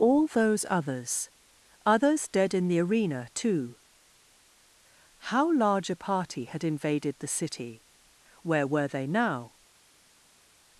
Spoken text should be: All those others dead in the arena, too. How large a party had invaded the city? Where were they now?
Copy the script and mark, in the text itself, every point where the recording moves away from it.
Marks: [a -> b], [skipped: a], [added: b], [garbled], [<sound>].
All those others [added: others] dead in the arena, too. How large a party had invaded the city? Where were they now?